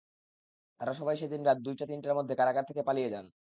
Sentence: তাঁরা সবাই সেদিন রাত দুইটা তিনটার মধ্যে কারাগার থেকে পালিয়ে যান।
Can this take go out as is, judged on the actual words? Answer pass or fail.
pass